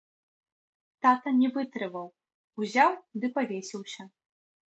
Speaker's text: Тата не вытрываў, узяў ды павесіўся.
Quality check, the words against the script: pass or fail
pass